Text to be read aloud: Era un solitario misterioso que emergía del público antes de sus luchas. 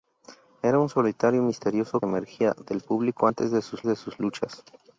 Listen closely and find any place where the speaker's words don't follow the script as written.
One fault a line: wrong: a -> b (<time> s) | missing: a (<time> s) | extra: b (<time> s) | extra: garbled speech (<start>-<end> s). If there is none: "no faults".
missing: que (2.0 s)
extra: de sus (3.8 s)